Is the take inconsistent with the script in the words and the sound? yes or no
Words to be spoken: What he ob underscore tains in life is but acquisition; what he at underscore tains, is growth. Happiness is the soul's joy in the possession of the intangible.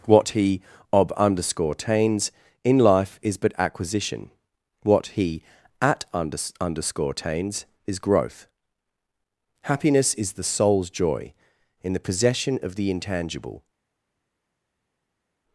yes